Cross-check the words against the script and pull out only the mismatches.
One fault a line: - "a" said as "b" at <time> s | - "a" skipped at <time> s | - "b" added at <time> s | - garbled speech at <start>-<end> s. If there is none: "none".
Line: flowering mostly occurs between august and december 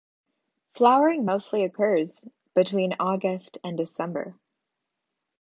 none